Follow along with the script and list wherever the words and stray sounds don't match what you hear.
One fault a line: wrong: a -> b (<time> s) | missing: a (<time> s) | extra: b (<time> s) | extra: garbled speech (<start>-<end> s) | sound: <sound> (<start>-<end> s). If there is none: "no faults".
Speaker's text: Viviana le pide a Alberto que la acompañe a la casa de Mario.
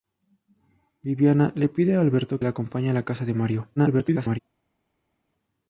missing: que (2.4 s)
extra: garbled speech (3.8-4.4 s)